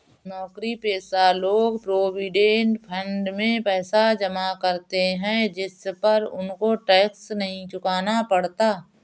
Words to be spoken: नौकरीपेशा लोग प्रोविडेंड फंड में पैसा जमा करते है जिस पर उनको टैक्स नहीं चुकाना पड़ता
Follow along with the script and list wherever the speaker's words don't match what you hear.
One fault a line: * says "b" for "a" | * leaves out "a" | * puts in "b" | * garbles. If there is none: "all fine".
all fine